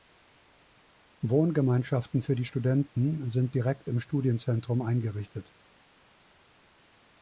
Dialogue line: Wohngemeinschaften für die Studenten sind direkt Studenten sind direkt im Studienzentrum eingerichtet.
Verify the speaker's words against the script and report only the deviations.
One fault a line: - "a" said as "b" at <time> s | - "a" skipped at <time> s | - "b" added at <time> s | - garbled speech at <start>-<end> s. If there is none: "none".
- "Studenten sind direkt" skipped at 3.9 s